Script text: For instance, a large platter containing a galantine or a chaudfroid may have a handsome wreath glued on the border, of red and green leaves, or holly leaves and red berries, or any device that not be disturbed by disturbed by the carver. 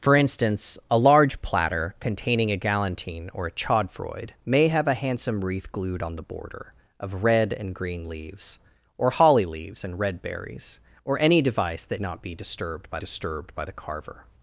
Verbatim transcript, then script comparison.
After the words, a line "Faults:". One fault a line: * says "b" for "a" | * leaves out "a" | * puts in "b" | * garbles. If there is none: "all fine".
For instance, a large platter containing a galantine or a chaudfroid may have a handsome wreath glued on the border, of red and green leaves, or holly leaves and red berries, or any device that not be disturbed by disturbed by the carver.
Faults:
all fine